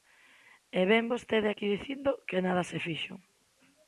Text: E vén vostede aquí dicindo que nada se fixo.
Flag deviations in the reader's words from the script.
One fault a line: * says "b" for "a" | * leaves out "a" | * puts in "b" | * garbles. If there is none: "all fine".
all fine